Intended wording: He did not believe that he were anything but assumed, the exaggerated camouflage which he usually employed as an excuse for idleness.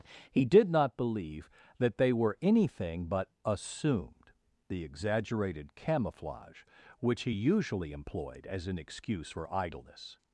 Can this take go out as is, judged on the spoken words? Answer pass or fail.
fail